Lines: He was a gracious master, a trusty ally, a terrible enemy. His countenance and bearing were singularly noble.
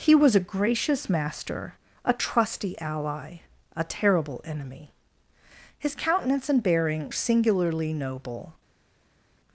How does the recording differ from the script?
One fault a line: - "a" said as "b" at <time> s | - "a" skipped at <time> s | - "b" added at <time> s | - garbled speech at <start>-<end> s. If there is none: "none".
- "were" skipped at 7.1 s